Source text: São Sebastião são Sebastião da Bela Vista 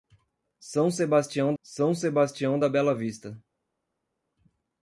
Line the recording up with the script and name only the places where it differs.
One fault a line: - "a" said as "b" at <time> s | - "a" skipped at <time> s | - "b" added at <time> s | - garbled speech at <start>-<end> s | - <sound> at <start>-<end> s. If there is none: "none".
none